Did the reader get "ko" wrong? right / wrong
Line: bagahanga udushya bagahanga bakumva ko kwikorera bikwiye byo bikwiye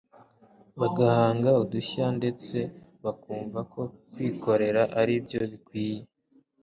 right